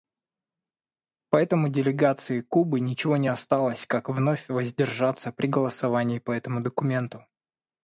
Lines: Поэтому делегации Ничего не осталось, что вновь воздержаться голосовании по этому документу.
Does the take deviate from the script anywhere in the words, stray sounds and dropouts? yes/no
yes